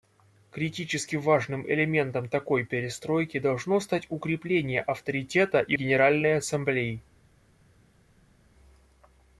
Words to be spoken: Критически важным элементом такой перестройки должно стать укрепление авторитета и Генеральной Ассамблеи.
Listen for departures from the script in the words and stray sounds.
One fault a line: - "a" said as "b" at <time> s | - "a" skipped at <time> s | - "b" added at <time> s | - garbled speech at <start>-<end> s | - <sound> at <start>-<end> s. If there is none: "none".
none